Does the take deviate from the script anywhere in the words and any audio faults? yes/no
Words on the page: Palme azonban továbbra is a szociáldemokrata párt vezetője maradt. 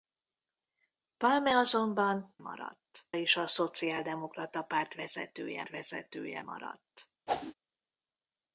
yes